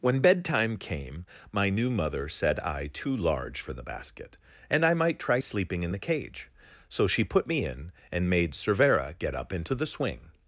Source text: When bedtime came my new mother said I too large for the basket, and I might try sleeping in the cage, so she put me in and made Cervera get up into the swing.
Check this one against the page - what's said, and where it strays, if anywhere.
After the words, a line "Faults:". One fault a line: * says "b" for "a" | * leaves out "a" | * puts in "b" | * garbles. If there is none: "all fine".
When bedtime came my new mother said I too large for the basket, and I might try sleeping in the cage, so she put me in and made Cervera get up into the swing.
Faults:
all fine